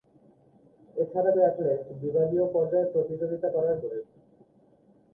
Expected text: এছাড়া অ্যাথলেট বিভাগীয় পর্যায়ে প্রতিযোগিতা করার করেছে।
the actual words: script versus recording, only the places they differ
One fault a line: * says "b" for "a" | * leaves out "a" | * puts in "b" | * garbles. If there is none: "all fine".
all fine